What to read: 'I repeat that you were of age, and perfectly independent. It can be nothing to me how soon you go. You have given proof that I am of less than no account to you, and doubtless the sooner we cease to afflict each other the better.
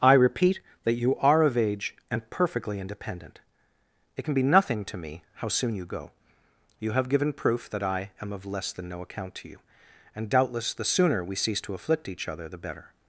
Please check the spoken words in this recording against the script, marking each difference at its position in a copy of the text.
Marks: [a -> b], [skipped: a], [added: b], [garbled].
'I repeat that you [were -> are] of age, and perfectly independent. It can be nothing to me how soon you go. You have given proof that I am of less than no account to you, and doubtless the sooner we cease to afflict each other the better.